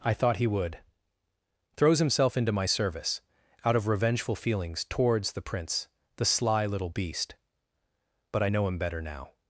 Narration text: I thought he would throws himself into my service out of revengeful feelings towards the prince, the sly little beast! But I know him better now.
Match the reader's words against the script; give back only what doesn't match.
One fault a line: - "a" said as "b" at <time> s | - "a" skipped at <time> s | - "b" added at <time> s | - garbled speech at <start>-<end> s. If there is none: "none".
none